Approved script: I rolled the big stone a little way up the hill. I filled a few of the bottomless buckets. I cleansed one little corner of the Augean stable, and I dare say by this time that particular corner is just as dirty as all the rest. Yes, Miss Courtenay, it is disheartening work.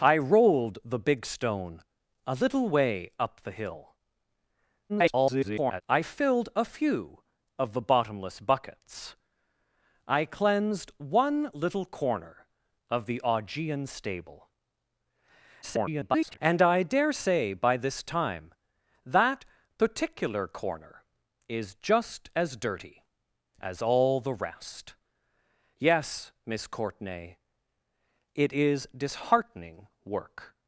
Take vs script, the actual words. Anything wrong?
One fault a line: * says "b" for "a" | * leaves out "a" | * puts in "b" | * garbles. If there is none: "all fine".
* garbles
* garbles